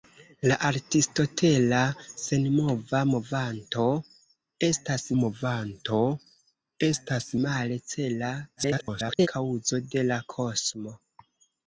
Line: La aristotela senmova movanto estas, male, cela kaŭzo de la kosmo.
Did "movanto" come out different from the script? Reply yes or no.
no